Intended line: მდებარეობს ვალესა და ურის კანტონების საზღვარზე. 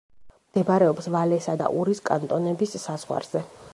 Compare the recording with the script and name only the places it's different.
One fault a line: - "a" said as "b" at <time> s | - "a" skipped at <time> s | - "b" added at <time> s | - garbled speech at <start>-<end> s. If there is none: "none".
none